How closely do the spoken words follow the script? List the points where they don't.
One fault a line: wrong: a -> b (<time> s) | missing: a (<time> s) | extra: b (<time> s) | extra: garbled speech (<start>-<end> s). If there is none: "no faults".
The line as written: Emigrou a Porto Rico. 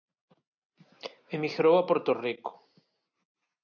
no faults